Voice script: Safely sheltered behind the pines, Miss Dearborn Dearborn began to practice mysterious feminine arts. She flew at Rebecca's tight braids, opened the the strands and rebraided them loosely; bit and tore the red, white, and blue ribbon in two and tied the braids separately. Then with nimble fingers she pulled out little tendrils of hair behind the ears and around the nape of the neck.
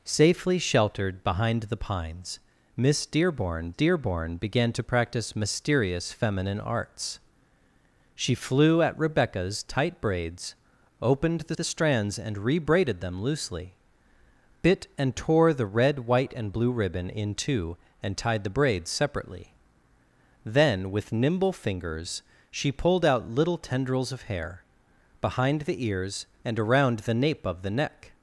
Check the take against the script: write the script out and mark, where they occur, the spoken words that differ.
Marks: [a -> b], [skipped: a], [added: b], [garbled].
Safely sheltered behind the pines, Miss Dearborn Dearborn began to practice mysterious feminine arts. She flew at Rebecca's tight braids, opened the the strands and rebraided them loosely; bit and tore the red, white, and blue ribbon in two and tied the braids separately. Then with nimble fingers she pulled out little tendrils of hair behind the ears and around the nape of the neck.